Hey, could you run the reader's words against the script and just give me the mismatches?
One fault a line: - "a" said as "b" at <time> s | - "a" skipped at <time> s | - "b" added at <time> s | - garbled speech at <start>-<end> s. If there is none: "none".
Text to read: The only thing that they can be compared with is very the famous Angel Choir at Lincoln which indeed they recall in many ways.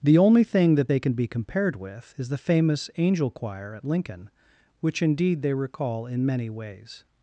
- "very" skipped at 2.3 s